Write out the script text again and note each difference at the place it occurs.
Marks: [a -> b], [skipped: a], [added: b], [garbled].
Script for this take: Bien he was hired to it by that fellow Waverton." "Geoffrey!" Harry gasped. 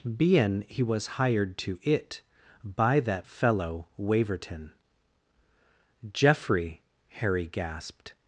Bien he was hired to it by that fellow Waverton." "Geoffrey!" Harry gasped.